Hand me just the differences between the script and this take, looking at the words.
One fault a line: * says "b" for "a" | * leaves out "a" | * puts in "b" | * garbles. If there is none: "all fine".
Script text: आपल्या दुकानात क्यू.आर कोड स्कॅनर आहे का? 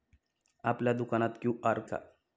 * leaves out "कोड स्कॅनर आहे"